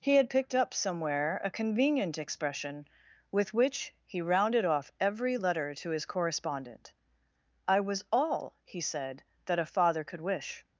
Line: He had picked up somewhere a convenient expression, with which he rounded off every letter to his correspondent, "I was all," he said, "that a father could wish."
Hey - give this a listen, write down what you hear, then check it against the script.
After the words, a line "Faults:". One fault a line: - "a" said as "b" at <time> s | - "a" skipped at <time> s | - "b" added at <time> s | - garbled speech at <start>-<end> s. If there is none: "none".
He had picked up somewhere a convenient expression, with which he rounded off every letter to his correspondent, "I was all," he said, "that a father could wish."
Faults:
none